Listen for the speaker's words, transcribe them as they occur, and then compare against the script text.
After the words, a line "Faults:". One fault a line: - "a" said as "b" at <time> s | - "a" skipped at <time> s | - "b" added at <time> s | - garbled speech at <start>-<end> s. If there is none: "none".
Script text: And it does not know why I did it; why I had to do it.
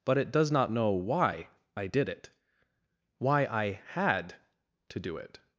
But it does not know why I did it; why I had to do it.
Faults:
- "And" said as "But" at 0.1 s